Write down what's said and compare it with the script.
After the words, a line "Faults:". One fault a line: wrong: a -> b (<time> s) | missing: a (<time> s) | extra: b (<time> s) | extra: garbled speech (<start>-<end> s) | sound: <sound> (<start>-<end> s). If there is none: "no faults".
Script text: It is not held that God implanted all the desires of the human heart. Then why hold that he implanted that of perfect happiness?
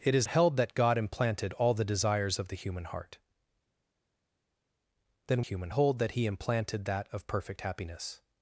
It is held that God implanted all the desires of the human heart. Then human hold that he implanted that of perfect happiness?
Faults:
missing: not (0.3 s)
wrong: why -> human (5.4 s)